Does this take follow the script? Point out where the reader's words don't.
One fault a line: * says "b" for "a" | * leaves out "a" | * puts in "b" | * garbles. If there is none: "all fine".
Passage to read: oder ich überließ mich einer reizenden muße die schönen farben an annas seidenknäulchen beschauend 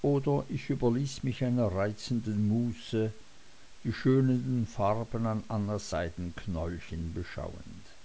all fine